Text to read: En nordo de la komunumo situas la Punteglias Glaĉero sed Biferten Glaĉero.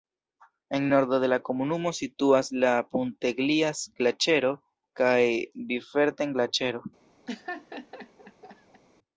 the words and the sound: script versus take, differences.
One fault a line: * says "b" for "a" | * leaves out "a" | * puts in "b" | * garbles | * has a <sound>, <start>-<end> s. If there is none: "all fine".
* says "kaj" for "sed"
* has a laugh, 7.3-8.8 s